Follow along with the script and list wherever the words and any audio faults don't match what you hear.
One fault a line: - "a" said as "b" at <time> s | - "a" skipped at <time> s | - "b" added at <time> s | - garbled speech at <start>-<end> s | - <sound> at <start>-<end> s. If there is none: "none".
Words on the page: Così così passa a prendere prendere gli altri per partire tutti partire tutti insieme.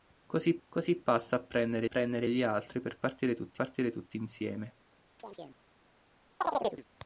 - chirp at 5.2-5.6 s
- chirp at 6.4-6.8 s